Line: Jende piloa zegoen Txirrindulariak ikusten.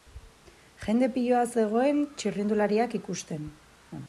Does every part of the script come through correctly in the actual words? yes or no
yes